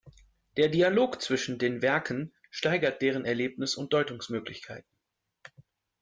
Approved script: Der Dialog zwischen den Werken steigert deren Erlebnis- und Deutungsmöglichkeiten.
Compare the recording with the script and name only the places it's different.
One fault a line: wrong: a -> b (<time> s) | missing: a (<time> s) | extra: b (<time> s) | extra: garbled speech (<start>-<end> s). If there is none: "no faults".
no faults